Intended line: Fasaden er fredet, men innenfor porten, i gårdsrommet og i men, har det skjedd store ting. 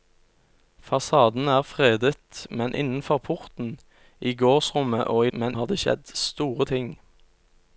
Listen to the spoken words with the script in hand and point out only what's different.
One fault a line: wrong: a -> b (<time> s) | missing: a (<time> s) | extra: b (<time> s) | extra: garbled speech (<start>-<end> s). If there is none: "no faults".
no faults